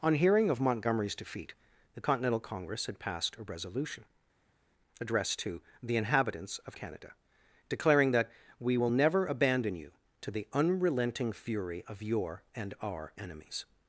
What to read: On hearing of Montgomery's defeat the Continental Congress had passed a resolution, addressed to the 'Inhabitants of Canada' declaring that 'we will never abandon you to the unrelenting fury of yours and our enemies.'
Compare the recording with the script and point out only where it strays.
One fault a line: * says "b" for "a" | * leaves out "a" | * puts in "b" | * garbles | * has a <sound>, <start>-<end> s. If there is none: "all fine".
* says "your" for "yours"